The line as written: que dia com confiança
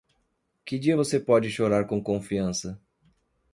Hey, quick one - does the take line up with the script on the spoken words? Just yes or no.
no